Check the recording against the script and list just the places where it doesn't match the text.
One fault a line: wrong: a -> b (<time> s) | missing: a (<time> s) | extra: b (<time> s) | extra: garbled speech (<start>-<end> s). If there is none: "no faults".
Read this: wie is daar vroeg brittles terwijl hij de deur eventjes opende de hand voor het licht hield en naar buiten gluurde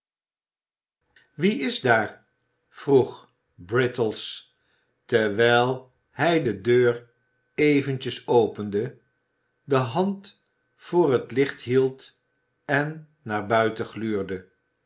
no faults